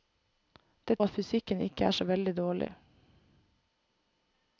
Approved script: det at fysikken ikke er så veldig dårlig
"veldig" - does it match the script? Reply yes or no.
yes